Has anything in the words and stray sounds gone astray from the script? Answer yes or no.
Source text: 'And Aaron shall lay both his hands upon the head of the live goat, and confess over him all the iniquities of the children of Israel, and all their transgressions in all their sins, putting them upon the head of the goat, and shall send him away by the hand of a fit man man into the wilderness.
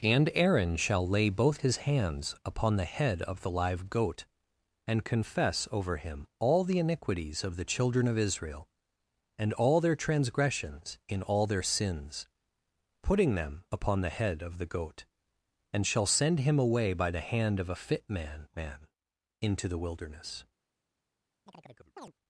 yes